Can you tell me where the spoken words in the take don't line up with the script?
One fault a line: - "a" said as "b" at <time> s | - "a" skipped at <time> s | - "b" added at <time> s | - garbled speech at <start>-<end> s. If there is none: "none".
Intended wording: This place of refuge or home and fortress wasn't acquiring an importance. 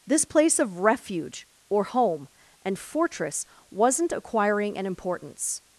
none